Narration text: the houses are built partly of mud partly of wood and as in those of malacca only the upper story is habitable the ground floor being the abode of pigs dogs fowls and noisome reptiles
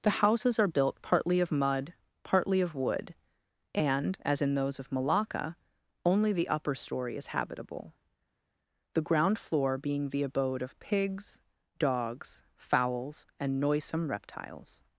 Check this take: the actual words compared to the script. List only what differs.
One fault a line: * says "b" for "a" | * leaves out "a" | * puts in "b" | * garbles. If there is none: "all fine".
all fine